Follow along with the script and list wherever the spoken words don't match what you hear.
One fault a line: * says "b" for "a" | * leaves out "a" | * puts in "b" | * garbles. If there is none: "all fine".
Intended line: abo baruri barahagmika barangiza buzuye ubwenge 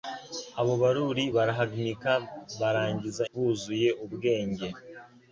all fine